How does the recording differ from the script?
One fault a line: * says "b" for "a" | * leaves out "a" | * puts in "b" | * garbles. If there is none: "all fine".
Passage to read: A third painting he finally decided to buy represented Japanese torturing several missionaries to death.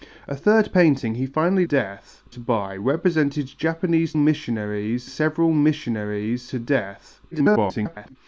* says "death" for "decided"
* says "missionaries" for "torturing"
* garbles